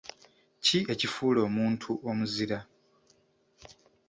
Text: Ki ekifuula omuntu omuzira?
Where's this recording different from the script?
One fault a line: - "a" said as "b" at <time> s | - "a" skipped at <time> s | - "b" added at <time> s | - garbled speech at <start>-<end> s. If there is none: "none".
none